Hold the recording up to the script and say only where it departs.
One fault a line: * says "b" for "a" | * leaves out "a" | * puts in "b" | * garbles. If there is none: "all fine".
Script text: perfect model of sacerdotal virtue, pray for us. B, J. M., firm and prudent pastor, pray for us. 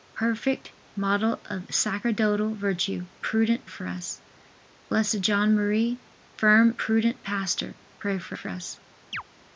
* says "prudent" for "pray"
* leaves out "and"
* puts in "for"